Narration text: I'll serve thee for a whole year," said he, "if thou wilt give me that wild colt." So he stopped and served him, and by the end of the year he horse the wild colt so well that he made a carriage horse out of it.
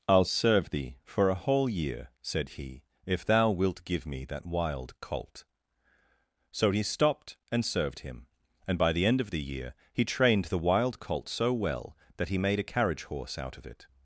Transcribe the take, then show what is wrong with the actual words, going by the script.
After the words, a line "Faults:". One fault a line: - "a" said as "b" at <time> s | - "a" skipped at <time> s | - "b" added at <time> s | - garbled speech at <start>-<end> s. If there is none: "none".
I'll serve thee for a whole year," said he, "if thou wilt give me that wild colt." So he stopped and served him, and by the end of the year he trained the wild colt so well that he made a carriage horse out of it.
Faults:
- "horse" said as "trained" at 10.0 s